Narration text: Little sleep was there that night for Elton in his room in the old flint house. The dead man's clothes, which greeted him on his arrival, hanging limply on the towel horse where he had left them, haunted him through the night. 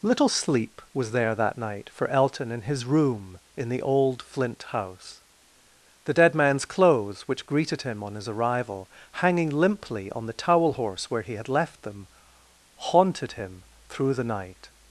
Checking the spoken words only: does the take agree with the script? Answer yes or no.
yes